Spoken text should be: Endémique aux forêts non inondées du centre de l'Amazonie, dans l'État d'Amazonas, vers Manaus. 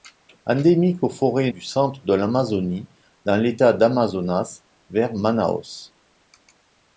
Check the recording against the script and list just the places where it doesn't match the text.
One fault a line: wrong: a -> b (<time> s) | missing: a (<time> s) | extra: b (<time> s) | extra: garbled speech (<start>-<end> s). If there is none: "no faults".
missing: non inondées (1.5 s)